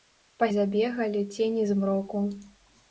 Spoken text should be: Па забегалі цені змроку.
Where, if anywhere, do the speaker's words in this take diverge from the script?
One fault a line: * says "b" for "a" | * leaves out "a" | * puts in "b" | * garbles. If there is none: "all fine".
all fine